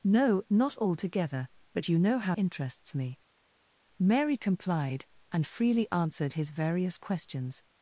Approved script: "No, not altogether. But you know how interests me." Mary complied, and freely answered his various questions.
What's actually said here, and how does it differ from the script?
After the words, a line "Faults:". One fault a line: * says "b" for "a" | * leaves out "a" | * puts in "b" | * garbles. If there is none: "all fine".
"No, not altogether. But you know how interests me." Mary complied, and freely answered his various questions.
Faults:
all fine